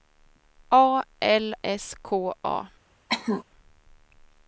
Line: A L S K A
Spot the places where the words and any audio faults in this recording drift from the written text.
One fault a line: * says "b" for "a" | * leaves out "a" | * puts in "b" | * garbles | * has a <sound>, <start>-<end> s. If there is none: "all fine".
* has a cough, 3.1-3.4 s